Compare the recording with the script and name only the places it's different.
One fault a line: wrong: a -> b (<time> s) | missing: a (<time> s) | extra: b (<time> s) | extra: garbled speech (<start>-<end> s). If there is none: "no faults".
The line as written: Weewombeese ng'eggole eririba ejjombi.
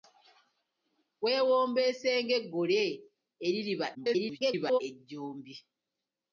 extra: garbled speech (3.9-4.8 s)